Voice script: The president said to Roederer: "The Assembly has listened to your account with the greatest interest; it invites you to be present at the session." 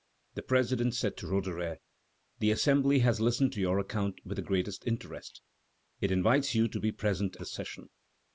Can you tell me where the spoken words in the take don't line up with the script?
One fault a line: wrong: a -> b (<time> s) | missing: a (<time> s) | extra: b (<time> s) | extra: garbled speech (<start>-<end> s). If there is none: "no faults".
missing: at (7.4 s)